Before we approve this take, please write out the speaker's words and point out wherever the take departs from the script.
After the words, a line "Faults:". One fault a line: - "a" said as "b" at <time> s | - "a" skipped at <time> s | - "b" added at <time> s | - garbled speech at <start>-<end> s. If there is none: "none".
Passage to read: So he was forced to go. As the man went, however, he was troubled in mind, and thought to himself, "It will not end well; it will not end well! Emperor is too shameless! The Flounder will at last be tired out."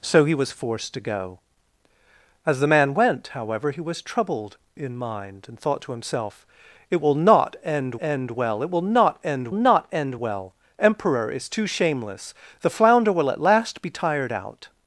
So he was forced to go. As the man went, however, he was troubled in mind, and thought to himself, "It will not end end well; it will not end not end well! Emperor is too shameless! The Flounder will at last be tired out."
Faults:
- "end" added at 8.0 s
- "not end" added at 9.5 s